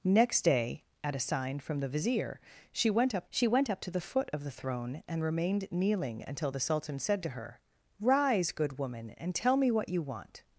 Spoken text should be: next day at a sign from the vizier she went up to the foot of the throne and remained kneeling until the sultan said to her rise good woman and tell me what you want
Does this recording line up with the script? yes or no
no